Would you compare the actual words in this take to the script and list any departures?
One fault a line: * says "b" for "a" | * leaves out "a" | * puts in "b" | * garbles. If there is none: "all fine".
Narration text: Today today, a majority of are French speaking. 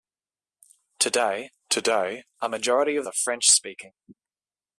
all fine